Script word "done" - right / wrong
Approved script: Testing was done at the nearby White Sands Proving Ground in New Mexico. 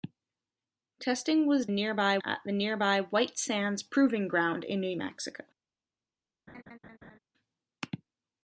wrong